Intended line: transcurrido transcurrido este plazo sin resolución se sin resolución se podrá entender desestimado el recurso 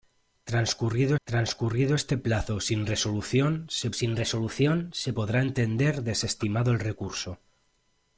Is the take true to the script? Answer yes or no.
yes